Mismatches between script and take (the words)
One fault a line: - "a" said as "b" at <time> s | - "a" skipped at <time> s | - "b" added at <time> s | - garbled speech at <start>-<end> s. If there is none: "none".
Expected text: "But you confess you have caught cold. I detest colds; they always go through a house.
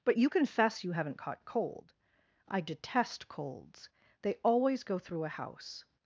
- "have" said as "haven't" at 0.9 s